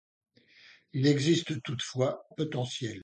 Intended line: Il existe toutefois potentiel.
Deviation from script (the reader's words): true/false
false